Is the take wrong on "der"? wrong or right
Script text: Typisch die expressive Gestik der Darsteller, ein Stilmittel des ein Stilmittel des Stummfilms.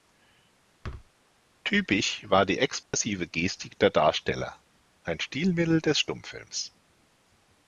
right